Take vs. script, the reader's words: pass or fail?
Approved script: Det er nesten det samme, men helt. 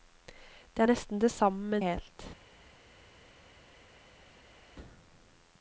pass